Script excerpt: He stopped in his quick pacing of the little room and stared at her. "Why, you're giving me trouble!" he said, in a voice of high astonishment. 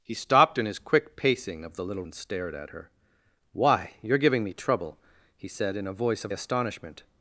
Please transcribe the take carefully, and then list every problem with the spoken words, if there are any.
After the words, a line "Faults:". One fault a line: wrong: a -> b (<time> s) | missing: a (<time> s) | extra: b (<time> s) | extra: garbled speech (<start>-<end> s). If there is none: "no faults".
He stopped in his quick pacing of the little and stared at her. "Why, you're giving me trouble!" he said, in a voice of astonishment.
Faults:
missing: room (2.0 s)
missing: high (6.3 s)